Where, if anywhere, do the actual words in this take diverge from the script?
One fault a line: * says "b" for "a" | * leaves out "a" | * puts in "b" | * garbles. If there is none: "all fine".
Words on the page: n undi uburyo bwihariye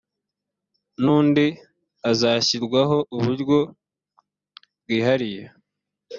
* puts in "hazashyirwaho"